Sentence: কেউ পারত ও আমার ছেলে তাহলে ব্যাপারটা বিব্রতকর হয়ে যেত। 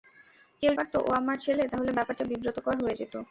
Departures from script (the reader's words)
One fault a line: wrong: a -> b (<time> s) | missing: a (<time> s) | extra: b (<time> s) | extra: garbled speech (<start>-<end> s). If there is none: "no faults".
no faults